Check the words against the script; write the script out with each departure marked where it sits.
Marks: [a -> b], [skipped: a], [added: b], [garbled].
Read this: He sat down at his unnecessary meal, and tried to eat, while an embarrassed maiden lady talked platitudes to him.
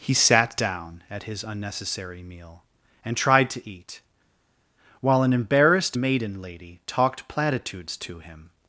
He sat down at his unnecessary meal, and tried to eat, while an embarrassed maiden lady talked platitudes to him.